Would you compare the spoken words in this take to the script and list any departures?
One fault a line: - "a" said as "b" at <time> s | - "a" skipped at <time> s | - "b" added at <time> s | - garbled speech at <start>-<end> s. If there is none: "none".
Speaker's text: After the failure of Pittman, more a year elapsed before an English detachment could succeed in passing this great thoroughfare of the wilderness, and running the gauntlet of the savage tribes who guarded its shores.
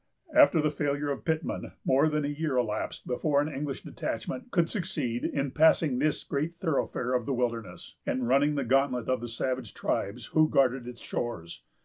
- "than" added at 2.1 s